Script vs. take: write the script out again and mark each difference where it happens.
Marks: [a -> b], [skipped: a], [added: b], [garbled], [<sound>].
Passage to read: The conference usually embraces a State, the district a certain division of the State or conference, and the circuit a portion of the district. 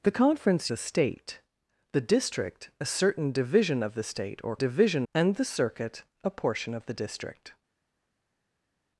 The conference [skipped: usually embraces] a State, the district a certain division of the State or [conference, -> division] and the circuit a portion of the district.